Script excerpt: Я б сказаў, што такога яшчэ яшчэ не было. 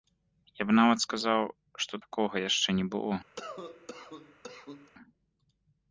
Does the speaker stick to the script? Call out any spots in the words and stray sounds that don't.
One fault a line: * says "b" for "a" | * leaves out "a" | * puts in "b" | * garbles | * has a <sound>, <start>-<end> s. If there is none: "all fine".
* puts in "нават"
* leaves out "яшчэ"
* has a cough, 3.4-4.9 s